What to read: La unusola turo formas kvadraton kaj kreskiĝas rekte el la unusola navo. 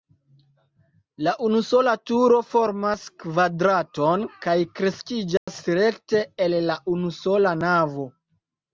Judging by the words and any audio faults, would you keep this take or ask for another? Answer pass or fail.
fail